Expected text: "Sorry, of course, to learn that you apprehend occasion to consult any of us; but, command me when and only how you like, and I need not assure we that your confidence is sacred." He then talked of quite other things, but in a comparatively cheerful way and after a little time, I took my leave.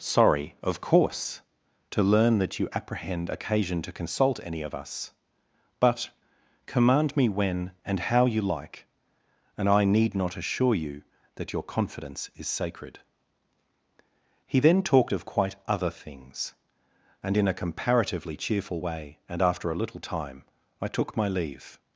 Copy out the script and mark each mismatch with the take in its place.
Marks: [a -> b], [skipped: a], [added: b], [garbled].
"Sorry, of course, to learn that you apprehend occasion to consult any of us; but, command me when and [skipped: only] how you like, and I need not assure [we -> you] that your confidence is sacred." He then talked of quite other things, [but -> and] in a comparatively cheerful way and after a little time, I took my leave.